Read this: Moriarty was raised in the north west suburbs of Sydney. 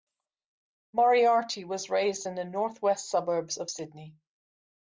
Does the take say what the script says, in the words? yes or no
yes